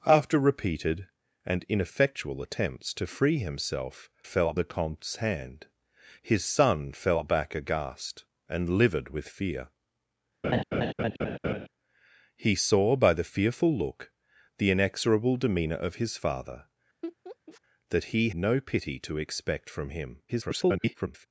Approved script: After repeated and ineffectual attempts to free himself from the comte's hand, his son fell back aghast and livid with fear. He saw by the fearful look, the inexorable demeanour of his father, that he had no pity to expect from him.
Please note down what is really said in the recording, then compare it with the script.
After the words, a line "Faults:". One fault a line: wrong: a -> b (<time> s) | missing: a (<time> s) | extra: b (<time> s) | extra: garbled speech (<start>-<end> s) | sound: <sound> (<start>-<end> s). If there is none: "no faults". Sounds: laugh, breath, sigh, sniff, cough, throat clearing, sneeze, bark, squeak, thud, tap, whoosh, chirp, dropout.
After repeated and ineffectual attempts to free himself fell the comte's hand, his son fell back aghast and livid with fear. He saw by the fearful look, the inexorable demeanour of his father, that he no pity to expect from him. [garbled]
Faults:
wrong: from -> fell (4.2 s)
sound: laugh (10.4-11.7 s)
sound: laugh (17.0-17.6 s)
missing: had (18.3 s)
extra: garbled speech (20.3-21.3 s)